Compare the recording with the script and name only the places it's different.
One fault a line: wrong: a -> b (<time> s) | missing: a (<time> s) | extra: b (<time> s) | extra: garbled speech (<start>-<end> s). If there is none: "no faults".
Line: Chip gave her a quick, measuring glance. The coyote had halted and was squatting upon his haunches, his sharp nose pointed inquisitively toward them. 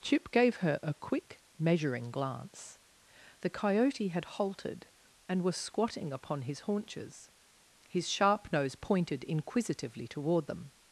no faults